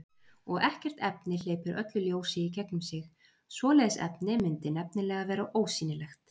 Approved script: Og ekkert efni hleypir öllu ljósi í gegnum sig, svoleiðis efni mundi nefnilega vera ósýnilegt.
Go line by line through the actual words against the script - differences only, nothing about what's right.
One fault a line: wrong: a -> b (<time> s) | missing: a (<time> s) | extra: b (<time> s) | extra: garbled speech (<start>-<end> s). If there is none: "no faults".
no faults